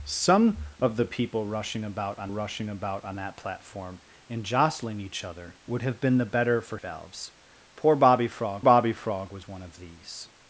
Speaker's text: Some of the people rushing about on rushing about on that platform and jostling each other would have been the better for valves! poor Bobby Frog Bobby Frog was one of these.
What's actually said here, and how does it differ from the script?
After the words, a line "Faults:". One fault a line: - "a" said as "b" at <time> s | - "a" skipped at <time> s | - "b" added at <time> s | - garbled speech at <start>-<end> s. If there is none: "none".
Some of the people rushing about on rushing about on that platform and jostling each other would have been the better for valves! poor Bobby Frog Bobby Frog was one of these.
Faults:
none